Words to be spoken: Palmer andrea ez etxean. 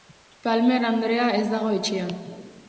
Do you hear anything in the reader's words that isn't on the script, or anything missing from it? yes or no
yes